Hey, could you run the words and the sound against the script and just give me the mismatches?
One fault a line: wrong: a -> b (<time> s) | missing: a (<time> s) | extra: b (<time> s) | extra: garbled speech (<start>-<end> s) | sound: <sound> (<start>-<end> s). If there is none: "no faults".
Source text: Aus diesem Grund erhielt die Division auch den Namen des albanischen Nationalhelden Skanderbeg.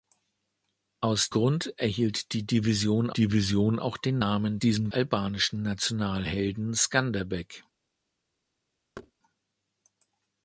missing: diesem (1.3 s)
extra: Division (3.1 s)
wrong: des -> diesem (4.6 s)
sound: thud (9.0-9.1 s)